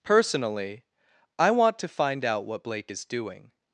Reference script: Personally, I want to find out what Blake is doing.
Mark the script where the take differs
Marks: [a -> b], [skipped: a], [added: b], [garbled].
Personally, I want to find out what Blake is doing.